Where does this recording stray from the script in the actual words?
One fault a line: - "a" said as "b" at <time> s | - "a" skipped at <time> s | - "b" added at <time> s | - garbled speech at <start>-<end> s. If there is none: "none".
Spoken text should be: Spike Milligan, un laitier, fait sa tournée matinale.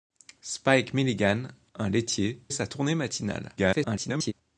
- "fait" skipped at 2.4 s
- garbled speech at 3.6-4.3 s